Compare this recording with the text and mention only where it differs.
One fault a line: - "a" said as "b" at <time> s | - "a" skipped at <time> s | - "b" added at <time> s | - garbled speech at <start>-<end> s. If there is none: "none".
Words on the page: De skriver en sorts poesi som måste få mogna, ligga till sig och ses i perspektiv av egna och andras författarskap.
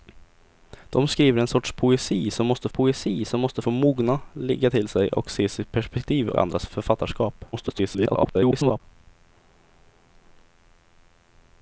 - "poesi som måste" added at 2.7 s
- "av egna och" skipped at 6.3 s
- garbled speech at 7.5-8.8 s